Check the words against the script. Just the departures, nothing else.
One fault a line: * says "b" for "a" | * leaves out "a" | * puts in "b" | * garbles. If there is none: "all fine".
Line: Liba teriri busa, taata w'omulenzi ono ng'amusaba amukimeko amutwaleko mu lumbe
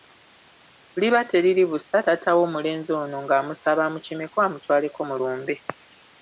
all fine